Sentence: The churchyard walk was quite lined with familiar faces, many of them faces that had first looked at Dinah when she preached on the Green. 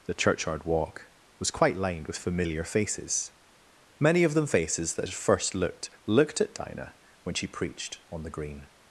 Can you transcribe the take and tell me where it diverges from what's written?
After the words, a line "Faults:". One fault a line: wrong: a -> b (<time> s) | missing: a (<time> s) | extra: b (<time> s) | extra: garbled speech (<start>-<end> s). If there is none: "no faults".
The churchyard walk was quite lined with familiar faces, many of them faces that had first looked looked at Dinah when she preached on the Green.
Faults:
extra: looked (6.0 s)